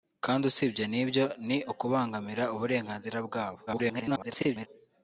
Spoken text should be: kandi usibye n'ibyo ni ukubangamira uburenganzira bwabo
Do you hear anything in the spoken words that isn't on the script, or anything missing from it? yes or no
yes